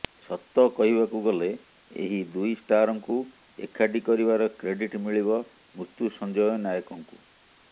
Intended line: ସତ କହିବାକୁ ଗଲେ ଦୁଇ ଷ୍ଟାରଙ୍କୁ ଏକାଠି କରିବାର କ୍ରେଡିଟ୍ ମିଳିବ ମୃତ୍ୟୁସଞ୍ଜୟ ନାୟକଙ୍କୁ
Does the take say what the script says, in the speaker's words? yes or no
no